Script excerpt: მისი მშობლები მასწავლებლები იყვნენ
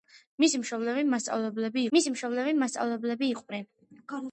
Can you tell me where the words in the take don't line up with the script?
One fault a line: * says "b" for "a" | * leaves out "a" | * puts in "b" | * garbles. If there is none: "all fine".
* puts in "მისი მშობლები მასწავლებლები"